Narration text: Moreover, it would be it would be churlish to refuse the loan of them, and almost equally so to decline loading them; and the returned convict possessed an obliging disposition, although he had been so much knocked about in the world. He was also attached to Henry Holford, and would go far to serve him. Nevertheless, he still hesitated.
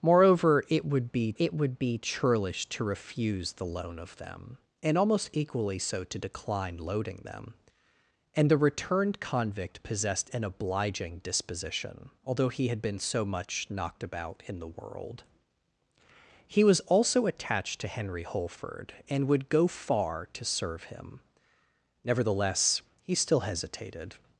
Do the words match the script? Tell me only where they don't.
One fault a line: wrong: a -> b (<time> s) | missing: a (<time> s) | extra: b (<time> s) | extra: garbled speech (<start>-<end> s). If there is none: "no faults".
no faults